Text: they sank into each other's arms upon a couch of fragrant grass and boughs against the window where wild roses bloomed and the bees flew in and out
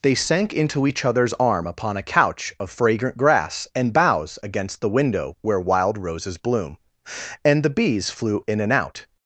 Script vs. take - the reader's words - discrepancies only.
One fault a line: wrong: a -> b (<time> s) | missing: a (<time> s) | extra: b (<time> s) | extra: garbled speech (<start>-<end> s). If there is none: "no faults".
wrong: arms -> arm (1.3 s)
wrong: bloomed -> bloom (6.4 s)